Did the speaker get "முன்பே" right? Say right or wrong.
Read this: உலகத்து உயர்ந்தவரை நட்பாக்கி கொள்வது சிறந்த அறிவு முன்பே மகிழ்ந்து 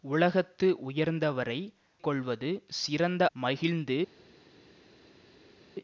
wrong